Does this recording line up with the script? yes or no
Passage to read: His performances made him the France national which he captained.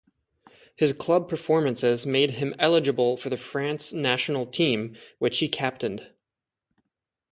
no